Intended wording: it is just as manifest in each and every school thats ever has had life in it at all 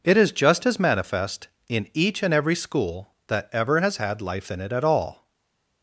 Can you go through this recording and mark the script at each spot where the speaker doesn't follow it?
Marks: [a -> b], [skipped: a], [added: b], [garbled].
it is just as manifest in each and every school [thats -> that] ever has had life in it at all